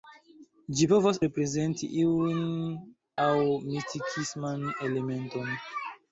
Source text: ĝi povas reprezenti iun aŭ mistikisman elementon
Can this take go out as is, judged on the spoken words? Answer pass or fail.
pass